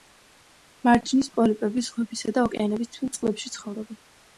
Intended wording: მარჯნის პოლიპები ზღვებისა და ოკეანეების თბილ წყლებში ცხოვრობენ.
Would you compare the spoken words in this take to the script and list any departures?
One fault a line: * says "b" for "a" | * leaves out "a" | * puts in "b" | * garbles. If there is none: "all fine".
all fine